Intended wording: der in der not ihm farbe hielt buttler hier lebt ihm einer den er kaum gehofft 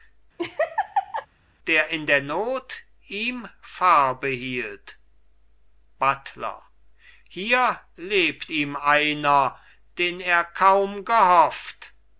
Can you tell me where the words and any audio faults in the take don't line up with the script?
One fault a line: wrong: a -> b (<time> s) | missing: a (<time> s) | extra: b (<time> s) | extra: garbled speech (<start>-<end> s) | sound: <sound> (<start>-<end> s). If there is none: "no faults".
sound: laugh (0.4-1.3 s)